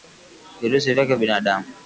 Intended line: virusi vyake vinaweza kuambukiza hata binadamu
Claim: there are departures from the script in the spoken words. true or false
true